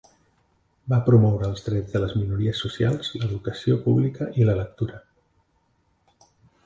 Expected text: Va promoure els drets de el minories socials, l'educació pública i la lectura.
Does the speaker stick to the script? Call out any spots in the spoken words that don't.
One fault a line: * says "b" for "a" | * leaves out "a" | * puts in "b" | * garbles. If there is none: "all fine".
* says "les" for "el"